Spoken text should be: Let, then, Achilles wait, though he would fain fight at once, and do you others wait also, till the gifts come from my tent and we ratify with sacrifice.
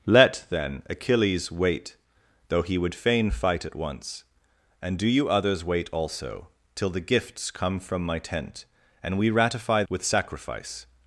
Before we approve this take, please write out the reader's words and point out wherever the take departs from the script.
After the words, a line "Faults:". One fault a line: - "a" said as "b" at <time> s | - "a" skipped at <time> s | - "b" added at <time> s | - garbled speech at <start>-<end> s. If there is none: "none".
Let, then, Achilles wait, though he would fain fight at once, and do you others wait also, till the gifts come from my tent and we ratify with sacrifice.
Faults:
none